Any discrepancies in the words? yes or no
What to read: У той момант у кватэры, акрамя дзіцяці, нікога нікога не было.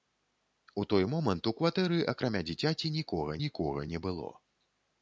no